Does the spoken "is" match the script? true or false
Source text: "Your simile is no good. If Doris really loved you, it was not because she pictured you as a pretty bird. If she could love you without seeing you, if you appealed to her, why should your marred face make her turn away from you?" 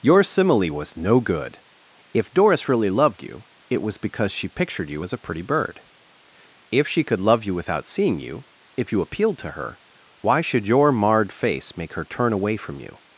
false